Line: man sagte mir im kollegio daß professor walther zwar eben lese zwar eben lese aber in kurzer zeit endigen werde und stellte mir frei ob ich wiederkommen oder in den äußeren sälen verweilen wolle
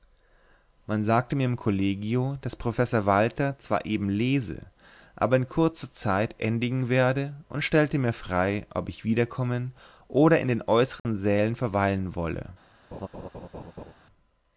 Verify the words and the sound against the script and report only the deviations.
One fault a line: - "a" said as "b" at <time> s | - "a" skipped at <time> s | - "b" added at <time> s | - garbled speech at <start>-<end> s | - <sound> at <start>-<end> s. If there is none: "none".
- "zwar eben lese" skipped at 4.7 s
- dropout at 11.0-11.0 s
- laugh at 12.9-13.9 s